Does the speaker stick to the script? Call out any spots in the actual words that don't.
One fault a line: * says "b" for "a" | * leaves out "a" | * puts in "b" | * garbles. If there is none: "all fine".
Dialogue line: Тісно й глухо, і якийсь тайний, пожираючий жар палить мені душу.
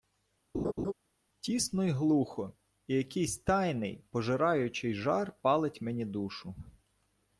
all fine